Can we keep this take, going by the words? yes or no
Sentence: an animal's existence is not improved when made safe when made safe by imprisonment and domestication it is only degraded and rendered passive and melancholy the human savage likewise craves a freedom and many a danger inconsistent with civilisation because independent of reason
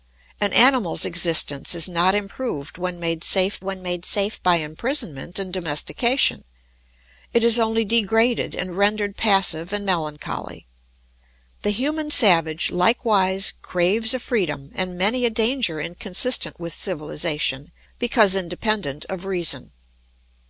yes